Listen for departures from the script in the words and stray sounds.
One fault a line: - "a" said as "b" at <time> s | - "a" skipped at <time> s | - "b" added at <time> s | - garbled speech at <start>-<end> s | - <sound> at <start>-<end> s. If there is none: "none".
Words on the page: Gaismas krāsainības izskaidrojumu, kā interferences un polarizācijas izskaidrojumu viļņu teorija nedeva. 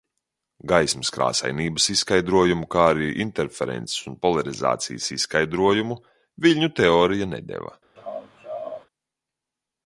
- "arī" added at 3.0 s
- laugh at 8.0-8.9 s